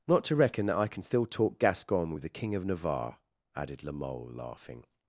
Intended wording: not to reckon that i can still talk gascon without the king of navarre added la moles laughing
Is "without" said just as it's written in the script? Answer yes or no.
no